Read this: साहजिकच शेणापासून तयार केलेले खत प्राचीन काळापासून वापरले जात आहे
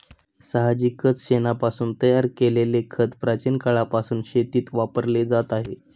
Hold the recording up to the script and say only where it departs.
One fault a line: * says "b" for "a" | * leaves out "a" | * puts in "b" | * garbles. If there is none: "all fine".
* puts in "शेतीत"